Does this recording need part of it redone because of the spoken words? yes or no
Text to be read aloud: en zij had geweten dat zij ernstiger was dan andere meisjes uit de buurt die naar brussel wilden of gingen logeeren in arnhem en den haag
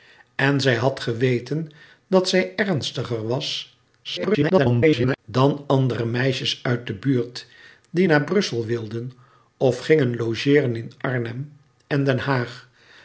yes